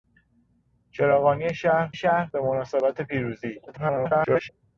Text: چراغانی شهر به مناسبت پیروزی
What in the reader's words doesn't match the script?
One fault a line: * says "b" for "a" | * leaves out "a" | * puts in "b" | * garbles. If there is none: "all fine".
* puts in "شهر"
* garbles